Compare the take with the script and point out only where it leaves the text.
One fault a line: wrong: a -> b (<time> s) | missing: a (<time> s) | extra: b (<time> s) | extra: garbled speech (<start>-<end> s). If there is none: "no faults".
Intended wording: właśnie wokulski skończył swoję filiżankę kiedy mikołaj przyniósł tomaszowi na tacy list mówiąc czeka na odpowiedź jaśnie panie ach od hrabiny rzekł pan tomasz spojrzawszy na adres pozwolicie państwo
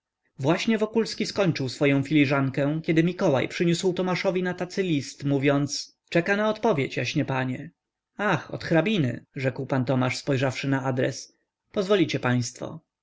no faults